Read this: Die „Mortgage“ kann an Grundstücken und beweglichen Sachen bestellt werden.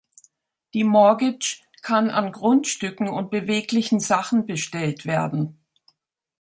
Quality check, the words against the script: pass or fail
pass